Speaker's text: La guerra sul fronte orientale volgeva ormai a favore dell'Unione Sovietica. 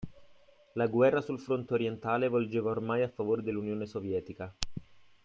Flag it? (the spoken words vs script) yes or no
no